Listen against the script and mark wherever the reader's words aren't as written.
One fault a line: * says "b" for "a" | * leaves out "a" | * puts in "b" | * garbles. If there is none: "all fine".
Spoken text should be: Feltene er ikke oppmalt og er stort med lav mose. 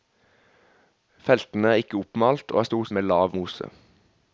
all fine